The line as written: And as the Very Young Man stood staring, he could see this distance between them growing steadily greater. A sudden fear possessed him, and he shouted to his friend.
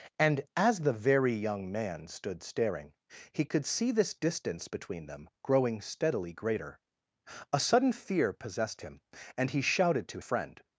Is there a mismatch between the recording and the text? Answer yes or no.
yes